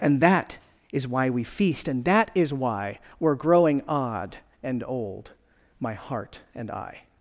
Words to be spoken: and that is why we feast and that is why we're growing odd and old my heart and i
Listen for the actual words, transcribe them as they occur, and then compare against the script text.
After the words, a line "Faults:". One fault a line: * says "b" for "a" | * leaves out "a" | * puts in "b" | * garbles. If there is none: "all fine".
and that is why we feast and that is why we're growing odd and old my heart and i
Faults:
all fine